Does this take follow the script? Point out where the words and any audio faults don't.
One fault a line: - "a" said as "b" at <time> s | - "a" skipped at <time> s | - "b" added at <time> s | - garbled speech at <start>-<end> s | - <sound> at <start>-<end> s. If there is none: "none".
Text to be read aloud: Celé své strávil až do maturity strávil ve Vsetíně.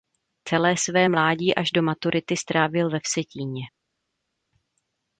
- "strávil" said as "mládí" at 1.1 s